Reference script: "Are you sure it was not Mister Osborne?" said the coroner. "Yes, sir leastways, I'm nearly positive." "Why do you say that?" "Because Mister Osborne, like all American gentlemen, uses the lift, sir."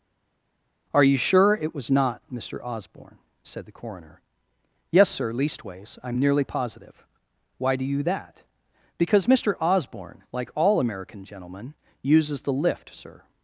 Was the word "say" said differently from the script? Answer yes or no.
yes